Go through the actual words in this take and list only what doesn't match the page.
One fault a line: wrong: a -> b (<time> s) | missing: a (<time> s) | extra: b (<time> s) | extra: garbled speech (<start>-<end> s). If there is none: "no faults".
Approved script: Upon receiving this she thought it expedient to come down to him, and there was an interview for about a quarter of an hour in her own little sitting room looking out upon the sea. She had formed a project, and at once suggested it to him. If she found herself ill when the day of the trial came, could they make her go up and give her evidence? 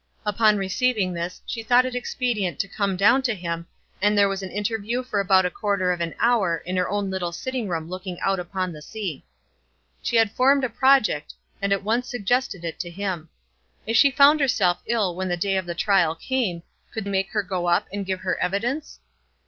missing: they (17.0 s)